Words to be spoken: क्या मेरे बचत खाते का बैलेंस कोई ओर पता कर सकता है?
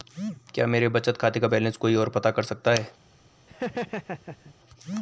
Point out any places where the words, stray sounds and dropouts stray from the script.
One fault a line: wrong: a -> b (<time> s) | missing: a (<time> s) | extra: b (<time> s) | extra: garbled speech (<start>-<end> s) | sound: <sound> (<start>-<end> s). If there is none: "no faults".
sound: laugh (3.5-4.6 s)